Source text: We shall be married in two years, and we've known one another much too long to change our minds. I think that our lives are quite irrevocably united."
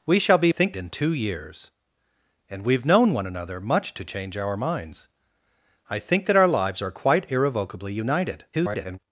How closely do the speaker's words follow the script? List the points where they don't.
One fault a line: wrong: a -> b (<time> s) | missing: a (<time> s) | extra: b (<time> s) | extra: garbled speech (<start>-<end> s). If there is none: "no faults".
wrong: married -> think (0.5 s)
missing: too long (3.9 s)
extra: garbled speech (8.5-9.0 s)